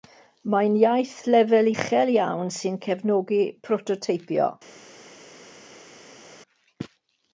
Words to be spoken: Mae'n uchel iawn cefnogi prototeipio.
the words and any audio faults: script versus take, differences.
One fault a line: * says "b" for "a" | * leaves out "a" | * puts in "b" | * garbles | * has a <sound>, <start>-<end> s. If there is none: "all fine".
* puts in "iaith lefel"
* puts in "sy'n"